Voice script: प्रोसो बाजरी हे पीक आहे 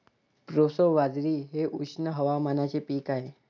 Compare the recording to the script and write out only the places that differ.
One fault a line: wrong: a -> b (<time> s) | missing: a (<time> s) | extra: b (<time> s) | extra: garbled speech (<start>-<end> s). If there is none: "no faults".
extra: उष्ण हवामानाचे (1.8 s)